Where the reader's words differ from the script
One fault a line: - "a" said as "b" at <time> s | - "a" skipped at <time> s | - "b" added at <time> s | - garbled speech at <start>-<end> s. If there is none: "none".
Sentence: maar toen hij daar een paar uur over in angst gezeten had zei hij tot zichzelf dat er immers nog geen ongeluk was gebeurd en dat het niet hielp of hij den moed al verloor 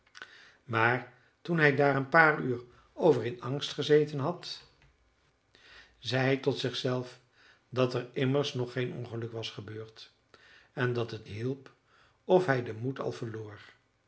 - "niet" skipped at 11.3 s